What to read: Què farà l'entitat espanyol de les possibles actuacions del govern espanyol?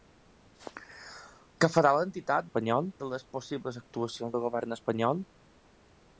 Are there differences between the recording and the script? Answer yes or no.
no